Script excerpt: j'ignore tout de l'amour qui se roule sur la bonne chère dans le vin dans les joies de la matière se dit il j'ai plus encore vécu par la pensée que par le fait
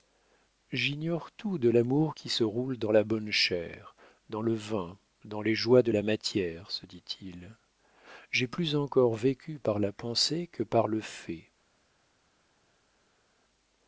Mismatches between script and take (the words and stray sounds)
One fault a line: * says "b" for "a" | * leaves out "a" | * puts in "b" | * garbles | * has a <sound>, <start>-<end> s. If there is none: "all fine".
* says "dans" for "sur"